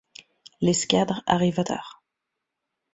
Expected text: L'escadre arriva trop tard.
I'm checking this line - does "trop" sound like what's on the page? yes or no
no